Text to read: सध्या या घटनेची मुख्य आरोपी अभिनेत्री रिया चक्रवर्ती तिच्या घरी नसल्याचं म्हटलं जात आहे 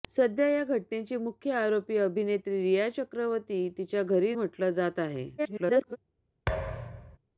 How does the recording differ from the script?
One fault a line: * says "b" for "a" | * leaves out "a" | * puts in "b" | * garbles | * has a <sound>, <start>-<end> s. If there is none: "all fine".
* leaves out "नसल्याचं"
* garbles
* has a thud, 6.5-7.2 s